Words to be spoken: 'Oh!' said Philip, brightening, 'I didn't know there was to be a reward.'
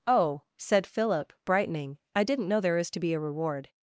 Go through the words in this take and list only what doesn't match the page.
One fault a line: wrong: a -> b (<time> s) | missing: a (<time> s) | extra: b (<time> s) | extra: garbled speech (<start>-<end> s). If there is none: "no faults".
wrong: was -> is (2.8 s)